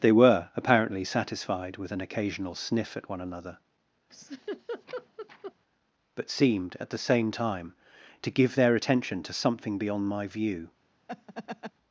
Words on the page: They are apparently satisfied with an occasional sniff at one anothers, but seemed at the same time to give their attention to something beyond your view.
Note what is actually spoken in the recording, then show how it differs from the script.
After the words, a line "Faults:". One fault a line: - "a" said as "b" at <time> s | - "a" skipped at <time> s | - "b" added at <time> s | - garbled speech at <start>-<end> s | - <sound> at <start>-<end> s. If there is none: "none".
They were apparently satisfied with an occasional sniff at one another, but seemed at the same time to give their attention to something beyond my view.
Faults:
- "are" said as "were" at 0.1 s
- "anothers" said as "another" at 3.2 s
- laugh at 4.1-5.5 s
- "your" said as "my" at 10.1 s
- laugh at 11.1-11.7 s